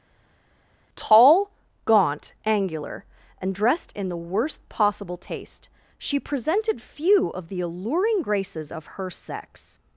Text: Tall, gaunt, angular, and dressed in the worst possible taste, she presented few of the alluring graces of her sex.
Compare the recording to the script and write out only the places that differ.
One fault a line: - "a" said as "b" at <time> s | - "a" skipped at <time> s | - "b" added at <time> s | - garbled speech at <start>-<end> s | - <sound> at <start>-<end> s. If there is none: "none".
none